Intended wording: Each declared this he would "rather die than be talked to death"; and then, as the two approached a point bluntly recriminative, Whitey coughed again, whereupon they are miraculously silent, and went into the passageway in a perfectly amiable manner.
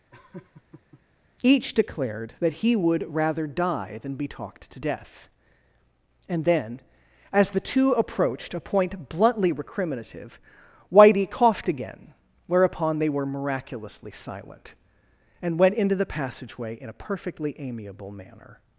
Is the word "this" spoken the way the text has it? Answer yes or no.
no